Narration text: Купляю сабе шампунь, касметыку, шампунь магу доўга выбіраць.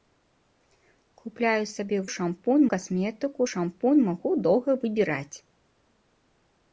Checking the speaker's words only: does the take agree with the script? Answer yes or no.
yes